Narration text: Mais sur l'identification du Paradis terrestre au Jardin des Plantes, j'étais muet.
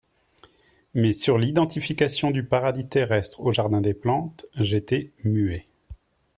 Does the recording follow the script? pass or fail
pass